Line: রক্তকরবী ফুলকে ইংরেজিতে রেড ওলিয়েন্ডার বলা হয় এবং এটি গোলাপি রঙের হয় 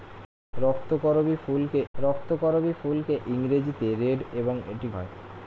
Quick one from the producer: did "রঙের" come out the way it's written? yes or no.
no